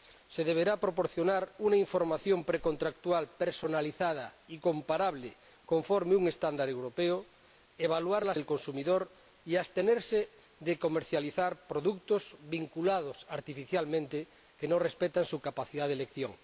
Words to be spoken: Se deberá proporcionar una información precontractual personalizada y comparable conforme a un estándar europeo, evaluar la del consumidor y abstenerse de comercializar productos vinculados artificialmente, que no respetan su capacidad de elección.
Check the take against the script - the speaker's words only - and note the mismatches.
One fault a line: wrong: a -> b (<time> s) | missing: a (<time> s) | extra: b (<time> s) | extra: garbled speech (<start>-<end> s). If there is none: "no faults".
no faults